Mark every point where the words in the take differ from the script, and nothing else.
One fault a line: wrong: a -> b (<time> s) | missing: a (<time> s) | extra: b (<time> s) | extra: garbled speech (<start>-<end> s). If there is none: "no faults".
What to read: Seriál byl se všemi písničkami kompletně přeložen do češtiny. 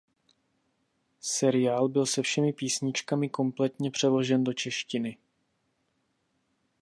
no faults